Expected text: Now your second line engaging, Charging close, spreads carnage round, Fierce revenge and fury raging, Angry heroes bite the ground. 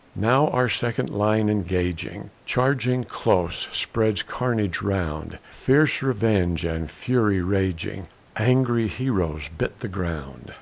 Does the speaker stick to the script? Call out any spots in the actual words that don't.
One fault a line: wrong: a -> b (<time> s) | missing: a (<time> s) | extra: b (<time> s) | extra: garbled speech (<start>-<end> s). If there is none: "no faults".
wrong: your -> our (0.5 s)